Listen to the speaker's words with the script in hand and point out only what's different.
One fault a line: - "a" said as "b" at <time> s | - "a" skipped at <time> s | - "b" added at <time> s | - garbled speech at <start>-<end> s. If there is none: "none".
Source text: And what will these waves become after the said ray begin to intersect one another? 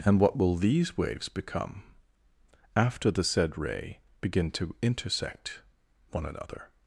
none